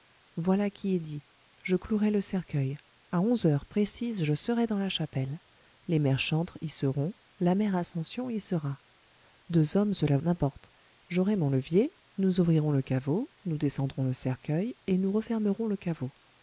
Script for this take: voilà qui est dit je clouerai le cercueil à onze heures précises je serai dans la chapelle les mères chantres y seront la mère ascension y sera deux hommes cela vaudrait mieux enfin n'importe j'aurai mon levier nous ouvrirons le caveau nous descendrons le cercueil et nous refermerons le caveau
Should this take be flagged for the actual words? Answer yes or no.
yes